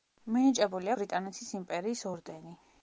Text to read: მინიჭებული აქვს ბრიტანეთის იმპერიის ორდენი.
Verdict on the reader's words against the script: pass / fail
fail